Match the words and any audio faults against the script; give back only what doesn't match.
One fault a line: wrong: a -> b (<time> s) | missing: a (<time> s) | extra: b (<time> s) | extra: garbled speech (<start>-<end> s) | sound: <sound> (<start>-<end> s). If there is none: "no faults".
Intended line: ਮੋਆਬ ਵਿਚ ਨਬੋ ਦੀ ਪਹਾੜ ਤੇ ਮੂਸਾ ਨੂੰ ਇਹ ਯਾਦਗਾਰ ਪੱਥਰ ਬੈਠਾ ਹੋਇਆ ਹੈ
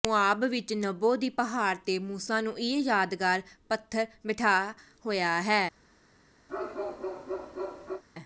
sound: bark (6.5-8.0 s)